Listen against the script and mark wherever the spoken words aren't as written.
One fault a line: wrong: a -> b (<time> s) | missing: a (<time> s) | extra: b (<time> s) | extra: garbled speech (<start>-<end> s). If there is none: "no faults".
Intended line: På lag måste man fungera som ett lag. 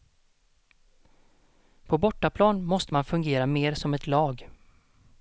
wrong: lag -> bortaplan (2.0 s)
extra: mer (3.5 s)